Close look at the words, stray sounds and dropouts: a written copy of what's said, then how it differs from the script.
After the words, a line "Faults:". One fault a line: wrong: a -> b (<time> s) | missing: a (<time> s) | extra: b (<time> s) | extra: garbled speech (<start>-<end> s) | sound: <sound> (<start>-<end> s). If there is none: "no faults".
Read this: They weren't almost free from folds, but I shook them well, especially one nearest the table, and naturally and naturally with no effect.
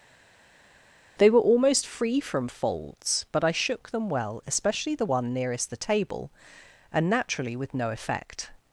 They were almost free from folds, but I shook them well, especially the one nearest the table, and naturally with no effect.
Faults:
wrong: weren't -> were (1.3 s)
extra: the (4.9 s)
missing: and naturally (7.6 s)